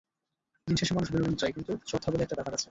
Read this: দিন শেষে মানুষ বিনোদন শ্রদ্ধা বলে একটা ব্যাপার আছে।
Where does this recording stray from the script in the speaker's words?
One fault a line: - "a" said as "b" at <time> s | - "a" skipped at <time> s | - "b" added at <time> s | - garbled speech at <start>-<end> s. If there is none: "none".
- "চায় কিন্তু" added at 1.3 s